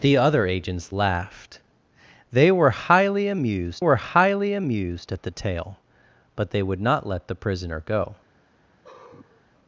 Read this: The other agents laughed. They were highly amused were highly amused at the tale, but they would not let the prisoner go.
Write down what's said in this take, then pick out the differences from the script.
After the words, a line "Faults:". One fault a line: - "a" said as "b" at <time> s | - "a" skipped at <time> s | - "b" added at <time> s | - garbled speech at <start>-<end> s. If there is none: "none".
The other agents laughed. They were highly amused were highly amused at the tale, but they would not let the prisoner go.
Faults:
none